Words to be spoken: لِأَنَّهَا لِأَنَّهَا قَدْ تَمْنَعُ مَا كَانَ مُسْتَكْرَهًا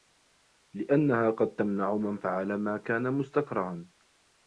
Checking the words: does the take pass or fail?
fail